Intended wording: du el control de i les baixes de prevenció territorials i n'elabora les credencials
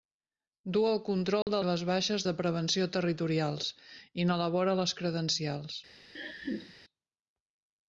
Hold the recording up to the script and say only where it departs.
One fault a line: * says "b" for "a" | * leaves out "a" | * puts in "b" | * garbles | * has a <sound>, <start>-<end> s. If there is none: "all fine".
* has a dropout, 1.4-1.5 s
* has a laugh, 6.1-6.7 s